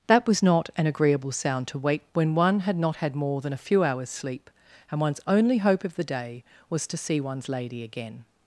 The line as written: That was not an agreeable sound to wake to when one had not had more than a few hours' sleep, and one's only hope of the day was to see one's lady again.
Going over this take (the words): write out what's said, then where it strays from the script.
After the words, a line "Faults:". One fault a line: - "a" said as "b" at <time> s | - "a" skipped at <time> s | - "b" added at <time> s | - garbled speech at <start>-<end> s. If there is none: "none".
That was not an agreeable sound to wake when one had not had more than a few hours' sleep, and one's only hope of the day was to see one's lady again.
Faults:
- "to" skipped at 2.1 s